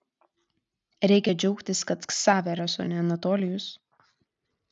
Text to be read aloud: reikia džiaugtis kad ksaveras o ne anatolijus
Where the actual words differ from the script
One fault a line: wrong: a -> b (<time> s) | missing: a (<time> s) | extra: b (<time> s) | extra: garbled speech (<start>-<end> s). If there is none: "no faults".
no faults